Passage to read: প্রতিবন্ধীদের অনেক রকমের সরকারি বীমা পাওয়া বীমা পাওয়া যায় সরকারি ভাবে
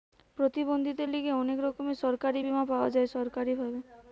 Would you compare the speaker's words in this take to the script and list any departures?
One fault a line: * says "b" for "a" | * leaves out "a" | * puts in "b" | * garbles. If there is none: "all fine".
* puts in "লিগে"
* leaves out "বীমা পাওয়া"